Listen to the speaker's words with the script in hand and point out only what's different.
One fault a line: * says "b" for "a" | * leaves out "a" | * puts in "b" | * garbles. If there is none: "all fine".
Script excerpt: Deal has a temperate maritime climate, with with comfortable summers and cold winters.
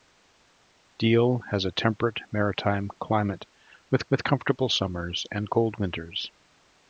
all fine